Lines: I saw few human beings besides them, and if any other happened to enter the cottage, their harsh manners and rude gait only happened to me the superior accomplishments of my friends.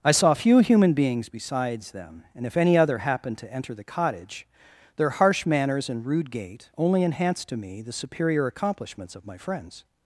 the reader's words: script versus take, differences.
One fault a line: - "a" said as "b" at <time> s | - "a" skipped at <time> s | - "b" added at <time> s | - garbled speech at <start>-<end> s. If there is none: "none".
- "happened" said as "enhanced" at 7.0 s